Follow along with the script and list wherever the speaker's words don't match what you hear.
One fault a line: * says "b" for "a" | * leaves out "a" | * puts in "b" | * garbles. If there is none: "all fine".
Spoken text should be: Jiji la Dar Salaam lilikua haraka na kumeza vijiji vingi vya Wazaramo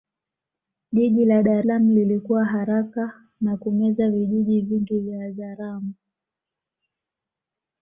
all fine